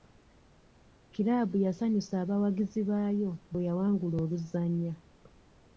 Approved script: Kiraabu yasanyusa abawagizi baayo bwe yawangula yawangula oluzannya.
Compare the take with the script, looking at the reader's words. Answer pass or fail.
fail